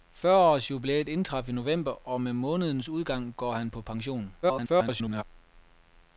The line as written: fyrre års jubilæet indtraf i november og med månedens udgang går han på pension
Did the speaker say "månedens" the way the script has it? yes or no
yes